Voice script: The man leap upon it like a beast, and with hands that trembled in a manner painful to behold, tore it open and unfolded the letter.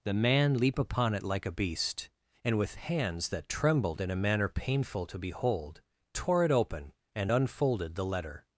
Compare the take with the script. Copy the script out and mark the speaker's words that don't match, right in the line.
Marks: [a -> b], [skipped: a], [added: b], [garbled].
The man leap upon it like a beast, and with hands that trembled in a manner painful to behold, tore it open and unfolded the letter.